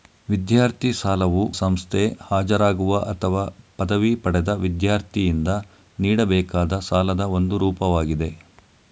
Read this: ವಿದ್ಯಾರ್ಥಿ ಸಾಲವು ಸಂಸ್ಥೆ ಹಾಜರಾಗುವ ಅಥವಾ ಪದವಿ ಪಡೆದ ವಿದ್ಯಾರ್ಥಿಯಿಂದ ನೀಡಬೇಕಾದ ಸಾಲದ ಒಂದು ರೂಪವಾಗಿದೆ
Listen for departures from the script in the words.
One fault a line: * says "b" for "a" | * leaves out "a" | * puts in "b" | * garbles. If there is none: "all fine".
all fine